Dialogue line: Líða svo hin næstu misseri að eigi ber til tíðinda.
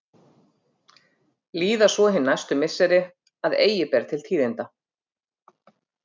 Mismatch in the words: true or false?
false